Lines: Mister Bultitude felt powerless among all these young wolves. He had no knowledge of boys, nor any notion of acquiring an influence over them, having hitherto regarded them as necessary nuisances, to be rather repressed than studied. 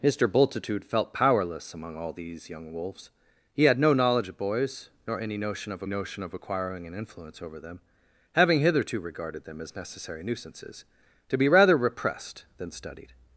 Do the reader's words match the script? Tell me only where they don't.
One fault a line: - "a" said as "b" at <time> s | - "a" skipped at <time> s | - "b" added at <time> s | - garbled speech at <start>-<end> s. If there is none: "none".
- "notion of" added at 5.9 s